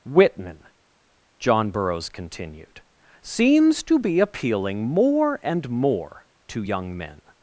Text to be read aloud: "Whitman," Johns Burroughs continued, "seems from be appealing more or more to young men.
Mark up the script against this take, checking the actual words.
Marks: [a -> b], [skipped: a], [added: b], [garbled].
"Whitman," [Johns -> John] Burroughs continued, "seems [from -> to] be appealing more [or -> and] more to young men.